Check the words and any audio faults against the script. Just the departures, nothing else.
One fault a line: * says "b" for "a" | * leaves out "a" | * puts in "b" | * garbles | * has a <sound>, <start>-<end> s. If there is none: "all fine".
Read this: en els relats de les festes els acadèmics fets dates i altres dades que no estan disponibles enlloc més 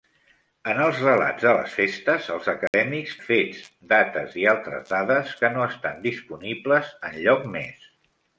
* has a dropout, 2.7-2.7 s